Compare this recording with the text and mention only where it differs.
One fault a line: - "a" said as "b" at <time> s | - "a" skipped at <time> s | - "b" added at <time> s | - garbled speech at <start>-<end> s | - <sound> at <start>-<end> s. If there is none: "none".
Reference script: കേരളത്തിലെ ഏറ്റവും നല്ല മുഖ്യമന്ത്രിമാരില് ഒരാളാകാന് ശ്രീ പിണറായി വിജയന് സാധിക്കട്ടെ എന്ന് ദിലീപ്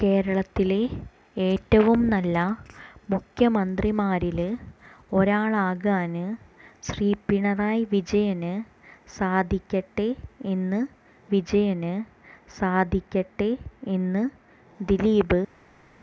- "വിജയന് സാധിക്കട്ടെ എന്ന്" added at 11.3 s